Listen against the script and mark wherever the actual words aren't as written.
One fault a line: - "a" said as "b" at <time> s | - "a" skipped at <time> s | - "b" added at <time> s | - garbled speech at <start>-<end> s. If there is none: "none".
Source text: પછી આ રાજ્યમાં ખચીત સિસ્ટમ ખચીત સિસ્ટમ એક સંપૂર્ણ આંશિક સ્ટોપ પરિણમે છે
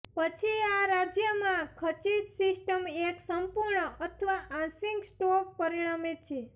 - "ખચીત સિસ્ટમ" skipped at 2.8 s
- "અથવા" added at 4.0 s